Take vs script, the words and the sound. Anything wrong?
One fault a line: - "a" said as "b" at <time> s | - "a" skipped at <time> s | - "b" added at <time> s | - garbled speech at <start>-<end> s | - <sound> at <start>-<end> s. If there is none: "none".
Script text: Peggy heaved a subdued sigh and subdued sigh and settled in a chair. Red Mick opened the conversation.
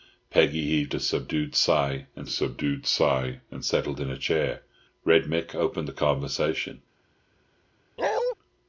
- bark at 8.0-8.3 s